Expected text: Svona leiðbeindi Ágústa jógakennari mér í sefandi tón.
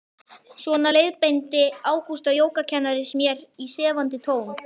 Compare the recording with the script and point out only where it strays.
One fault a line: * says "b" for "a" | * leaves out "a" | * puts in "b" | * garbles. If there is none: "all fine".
all fine